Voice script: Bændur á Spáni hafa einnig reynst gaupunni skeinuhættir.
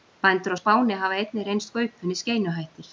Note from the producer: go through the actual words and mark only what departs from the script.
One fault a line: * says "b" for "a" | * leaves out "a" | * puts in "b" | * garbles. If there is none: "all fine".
all fine